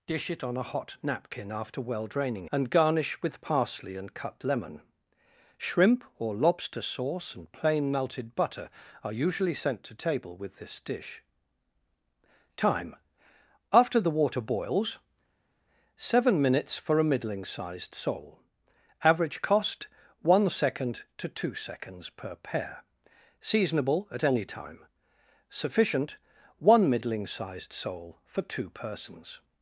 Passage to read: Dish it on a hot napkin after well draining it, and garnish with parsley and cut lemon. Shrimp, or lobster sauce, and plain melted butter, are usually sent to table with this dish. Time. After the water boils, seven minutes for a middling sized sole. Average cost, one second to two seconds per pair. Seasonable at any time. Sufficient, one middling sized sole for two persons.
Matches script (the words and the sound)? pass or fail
fail